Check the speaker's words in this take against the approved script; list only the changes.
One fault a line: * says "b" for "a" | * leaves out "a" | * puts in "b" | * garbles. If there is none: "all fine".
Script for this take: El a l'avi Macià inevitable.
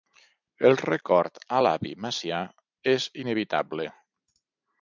* puts in "record"
* puts in "és"